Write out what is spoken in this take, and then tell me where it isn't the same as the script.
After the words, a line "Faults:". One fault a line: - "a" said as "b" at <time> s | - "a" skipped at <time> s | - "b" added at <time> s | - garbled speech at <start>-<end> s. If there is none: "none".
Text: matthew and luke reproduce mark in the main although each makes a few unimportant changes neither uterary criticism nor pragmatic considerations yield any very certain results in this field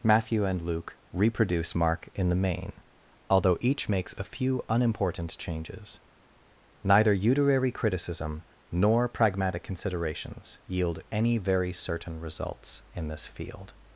matthew and luke reproduce mark in the main although each makes a few unimportant changes neither uterary criticism nor pragmatic considerations yield any very certain results in this field
Faults:
none